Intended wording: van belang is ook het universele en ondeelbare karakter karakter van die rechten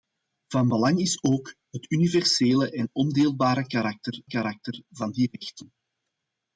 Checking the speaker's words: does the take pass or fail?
pass